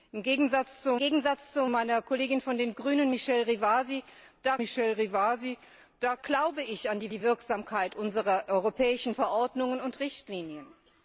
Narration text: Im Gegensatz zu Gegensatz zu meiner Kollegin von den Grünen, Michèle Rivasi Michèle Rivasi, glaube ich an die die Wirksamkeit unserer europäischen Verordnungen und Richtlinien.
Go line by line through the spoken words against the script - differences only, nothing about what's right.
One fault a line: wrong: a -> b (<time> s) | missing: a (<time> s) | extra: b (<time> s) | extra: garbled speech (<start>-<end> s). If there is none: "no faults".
no faults